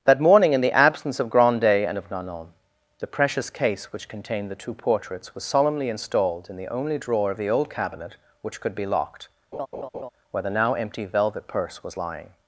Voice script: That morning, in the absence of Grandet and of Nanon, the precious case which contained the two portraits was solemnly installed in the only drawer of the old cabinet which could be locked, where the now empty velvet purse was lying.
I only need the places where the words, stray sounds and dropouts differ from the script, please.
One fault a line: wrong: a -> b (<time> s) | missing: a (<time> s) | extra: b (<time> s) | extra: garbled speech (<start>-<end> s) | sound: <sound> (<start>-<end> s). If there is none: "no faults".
sound: laugh (9.5-10.1 s)